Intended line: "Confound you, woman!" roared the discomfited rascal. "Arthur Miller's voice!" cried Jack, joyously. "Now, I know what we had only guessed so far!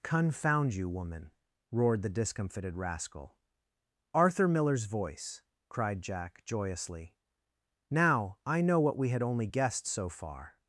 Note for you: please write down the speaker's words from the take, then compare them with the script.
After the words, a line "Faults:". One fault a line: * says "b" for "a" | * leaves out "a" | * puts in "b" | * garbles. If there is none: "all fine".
"Confound you, woman!" roared the discomfited rascal. "Arthur Miller's voice!" cried Jack, joyously. "Now, I know what we had only guessed so far!
Faults:
all fine